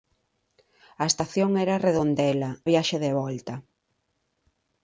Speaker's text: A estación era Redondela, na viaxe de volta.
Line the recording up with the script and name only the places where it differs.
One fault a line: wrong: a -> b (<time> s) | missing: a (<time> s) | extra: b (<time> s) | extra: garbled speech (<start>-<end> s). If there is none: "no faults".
missing: na (2.5 s)